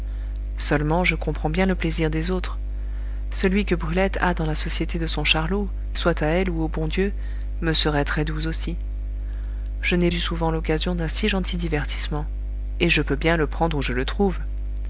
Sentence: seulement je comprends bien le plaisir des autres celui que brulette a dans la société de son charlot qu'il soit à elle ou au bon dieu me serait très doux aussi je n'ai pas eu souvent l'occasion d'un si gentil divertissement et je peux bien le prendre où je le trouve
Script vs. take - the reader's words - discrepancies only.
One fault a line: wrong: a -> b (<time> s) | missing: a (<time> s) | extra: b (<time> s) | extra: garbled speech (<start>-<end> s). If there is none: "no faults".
missing: qu'il (5.7 s)
missing: pas (10.1 s)